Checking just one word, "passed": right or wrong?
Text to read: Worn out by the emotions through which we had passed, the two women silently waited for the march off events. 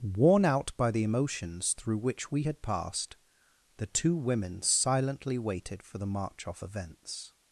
right